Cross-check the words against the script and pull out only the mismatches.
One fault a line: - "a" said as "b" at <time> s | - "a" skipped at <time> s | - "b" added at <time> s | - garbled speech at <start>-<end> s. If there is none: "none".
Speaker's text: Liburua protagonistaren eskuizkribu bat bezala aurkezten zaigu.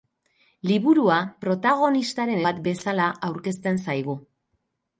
- "eskuizkribu" skipped at 2.4 s